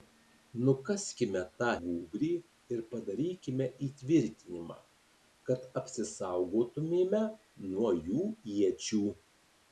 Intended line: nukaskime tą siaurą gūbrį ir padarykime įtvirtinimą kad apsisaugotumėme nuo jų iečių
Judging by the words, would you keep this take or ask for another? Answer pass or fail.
fail